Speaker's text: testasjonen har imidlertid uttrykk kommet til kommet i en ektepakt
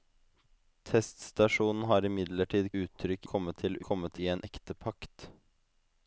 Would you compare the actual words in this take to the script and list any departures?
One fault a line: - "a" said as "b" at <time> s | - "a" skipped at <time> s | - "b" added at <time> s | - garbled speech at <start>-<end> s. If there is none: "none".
none